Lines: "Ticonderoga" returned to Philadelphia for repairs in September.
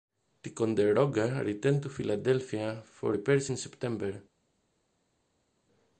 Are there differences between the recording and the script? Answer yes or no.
no